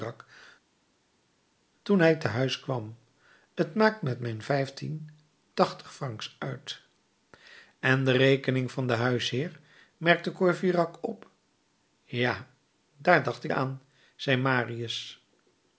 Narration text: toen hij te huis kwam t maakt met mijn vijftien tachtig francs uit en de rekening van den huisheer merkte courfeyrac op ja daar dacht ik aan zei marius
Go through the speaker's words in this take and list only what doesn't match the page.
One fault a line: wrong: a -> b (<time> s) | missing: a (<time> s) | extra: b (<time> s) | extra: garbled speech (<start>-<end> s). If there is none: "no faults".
no faults